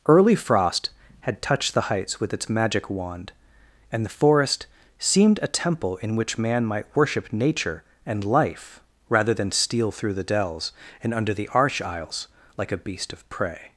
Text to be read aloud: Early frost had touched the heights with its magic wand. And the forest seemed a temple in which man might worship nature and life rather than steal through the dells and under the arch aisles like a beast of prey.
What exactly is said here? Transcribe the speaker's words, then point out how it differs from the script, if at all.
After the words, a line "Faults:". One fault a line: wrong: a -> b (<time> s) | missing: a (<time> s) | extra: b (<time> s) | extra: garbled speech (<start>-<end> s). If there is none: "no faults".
Early frost had touched the heights with its magic wand. And the forest seemed a temple in which man might worship nature and life rather than steal through the dells and under the arch aisles like a beast of prey.
Faults:
no faults